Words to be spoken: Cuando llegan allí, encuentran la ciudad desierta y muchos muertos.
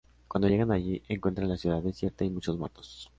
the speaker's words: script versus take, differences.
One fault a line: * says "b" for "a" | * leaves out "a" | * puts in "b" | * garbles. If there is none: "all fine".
all fine